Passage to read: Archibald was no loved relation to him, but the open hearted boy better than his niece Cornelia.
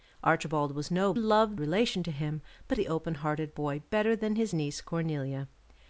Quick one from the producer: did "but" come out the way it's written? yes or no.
yes